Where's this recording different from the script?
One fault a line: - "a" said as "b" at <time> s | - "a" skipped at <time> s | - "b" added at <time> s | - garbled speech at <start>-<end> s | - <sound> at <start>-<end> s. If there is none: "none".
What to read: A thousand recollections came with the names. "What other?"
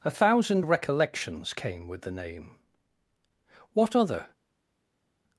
- "names" said as "name" at 2.1 s